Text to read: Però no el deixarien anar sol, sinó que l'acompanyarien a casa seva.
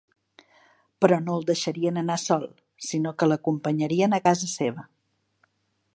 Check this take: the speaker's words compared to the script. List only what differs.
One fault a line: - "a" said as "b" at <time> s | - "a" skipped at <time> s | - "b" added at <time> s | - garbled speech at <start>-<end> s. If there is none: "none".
none